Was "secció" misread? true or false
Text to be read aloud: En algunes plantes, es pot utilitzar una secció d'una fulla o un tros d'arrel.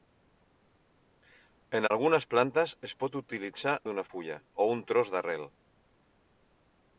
true